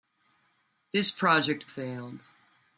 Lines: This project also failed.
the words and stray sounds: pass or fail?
fail